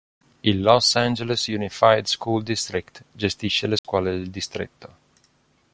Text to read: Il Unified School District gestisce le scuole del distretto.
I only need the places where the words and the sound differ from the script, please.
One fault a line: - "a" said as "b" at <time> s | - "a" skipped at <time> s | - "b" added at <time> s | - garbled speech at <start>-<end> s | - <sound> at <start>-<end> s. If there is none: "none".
- "Los Angeles" added at 0.6 s
- dropout at 3.8-3.8 s